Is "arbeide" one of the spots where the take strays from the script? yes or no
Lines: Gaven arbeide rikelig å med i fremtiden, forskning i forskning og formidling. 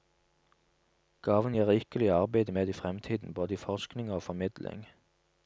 yes